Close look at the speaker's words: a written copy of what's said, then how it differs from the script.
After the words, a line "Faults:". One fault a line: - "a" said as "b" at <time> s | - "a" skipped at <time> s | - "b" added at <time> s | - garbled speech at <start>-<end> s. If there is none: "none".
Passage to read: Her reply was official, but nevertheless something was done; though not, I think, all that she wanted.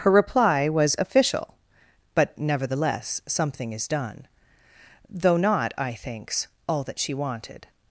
Her reply was official, but nevertheless something is done; though not, I thinks, all that she wanted.
Faults:
- "was" said as "is" at 3.7 s
- "think" said as "thinks" at 5.9 s